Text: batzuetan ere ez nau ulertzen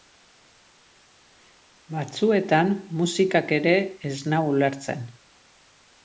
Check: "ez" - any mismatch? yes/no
no